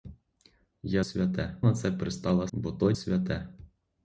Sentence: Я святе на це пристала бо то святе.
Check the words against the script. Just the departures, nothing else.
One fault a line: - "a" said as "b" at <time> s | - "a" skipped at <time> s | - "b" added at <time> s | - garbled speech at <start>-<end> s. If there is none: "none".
none